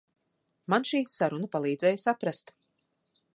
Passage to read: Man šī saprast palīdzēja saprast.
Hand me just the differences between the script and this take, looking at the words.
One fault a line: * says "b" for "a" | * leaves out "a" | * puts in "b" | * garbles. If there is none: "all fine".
* says "saruna" for "saprast"